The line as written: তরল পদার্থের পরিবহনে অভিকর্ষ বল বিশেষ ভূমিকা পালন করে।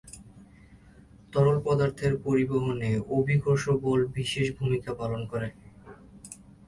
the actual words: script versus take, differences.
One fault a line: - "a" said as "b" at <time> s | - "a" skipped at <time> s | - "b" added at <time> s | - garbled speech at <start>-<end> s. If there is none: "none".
none